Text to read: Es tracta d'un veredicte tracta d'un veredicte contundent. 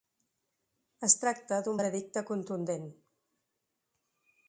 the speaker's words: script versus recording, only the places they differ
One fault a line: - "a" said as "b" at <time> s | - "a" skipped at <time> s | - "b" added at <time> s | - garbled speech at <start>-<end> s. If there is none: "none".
- "tracta d'un veredicte" skipped at 2.2 s